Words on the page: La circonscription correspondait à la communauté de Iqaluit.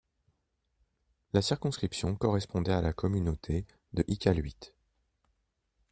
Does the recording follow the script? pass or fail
pass